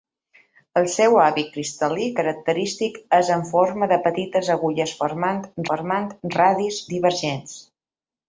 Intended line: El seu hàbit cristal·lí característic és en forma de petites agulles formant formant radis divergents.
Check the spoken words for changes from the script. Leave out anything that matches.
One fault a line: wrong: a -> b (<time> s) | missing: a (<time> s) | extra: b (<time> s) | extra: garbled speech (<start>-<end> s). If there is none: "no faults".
no faults